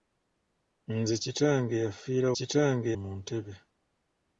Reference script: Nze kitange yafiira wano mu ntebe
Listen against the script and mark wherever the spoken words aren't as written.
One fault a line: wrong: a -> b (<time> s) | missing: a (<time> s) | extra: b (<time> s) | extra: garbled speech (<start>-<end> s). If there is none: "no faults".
wrong: wano -> kitange (2.4 s)